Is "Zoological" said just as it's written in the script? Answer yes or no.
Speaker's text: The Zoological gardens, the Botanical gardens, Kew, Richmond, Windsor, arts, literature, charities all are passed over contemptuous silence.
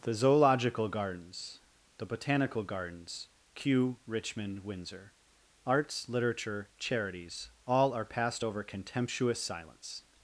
yes